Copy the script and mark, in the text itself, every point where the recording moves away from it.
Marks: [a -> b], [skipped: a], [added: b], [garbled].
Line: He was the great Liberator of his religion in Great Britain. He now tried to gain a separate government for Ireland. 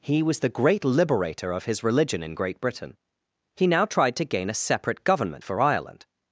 He was the great Liberator of his religion in Great Britain. He now tried to gain a separate government for Ireland.